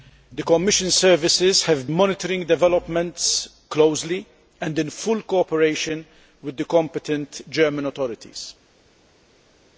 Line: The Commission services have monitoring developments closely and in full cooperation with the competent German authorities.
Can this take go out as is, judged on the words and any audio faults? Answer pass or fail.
pass